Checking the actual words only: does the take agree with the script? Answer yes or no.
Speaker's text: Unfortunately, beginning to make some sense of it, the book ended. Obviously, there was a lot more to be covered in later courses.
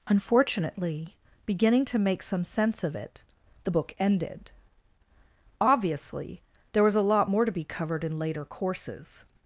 yes